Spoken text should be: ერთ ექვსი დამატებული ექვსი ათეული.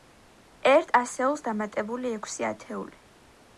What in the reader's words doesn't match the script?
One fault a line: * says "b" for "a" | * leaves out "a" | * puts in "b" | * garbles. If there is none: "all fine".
* says "ასეულს" for "ექვსი"